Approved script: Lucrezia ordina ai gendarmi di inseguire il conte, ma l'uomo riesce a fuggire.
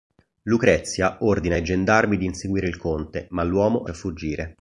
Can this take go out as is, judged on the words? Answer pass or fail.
fail